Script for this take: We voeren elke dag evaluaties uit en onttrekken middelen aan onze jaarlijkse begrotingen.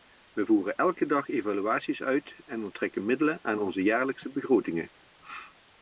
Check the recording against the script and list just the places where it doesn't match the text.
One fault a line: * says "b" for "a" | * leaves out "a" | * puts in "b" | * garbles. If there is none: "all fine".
all fine